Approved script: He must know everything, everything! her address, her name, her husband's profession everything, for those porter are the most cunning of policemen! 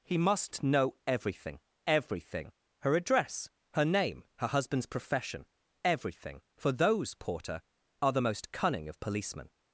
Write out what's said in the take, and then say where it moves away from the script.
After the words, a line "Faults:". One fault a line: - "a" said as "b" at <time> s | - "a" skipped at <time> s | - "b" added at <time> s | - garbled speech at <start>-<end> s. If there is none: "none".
He must know everything, everything! her address, her name, her husband's profession everything, for those porter are the most cunning of policemen!
Faults:
none